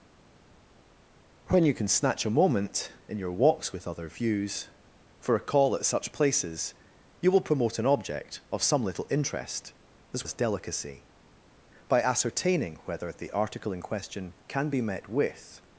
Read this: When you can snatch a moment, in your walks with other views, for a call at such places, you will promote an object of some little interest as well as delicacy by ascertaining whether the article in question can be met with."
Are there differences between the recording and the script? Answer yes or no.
yes